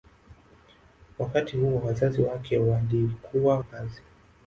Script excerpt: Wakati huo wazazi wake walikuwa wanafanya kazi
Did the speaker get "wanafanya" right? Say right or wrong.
wrong